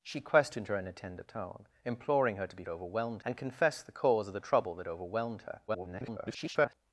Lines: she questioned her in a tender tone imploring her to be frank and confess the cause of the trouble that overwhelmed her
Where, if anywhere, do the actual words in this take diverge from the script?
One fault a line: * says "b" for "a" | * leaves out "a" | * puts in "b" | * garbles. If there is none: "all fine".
* says "overwhelmed" for "frank"
* garbles